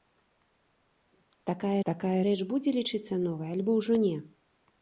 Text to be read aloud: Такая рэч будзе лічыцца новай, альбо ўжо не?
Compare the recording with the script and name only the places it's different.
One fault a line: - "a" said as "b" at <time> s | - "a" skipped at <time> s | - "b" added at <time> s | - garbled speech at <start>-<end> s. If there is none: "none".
- "такая" added at 1.9 s